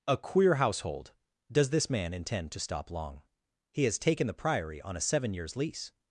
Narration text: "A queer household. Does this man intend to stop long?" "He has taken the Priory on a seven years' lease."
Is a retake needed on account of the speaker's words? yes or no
no